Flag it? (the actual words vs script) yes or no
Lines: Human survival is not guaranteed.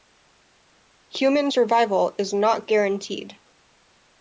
no